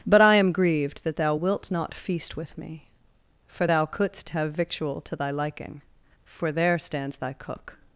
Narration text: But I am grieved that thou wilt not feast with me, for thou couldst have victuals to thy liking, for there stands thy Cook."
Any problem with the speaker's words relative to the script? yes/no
yes